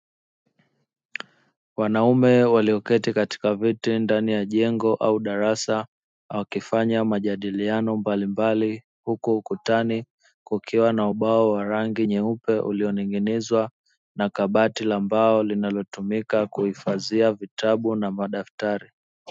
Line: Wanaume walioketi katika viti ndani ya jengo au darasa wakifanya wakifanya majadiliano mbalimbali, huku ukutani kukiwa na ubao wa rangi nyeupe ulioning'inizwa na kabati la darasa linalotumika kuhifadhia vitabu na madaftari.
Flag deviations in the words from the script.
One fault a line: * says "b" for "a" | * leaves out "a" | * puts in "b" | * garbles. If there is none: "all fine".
* leaves out "wakifanya"
* says "mbao" for "darasa"